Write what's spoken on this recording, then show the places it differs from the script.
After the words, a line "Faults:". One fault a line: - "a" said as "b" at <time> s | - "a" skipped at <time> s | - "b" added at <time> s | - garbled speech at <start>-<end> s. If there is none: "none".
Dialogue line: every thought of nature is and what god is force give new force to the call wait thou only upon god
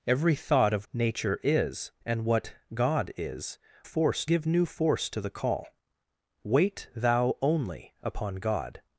every thought of nature is and what god is force give new force to the call wait thou only upon god
Faults:
none